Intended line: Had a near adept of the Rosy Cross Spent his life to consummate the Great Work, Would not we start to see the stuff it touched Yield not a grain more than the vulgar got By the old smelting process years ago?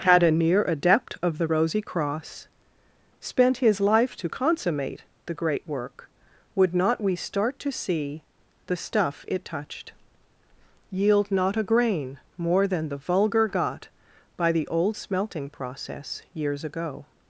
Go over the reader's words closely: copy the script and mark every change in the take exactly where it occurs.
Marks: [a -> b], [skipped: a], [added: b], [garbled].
Had a near adept of the Rosy Cross Spent his life to consummate the Great Work, Would not we start to see the stuff it touched Yield not a grain more than the vulgar got By the old smelting process years ago?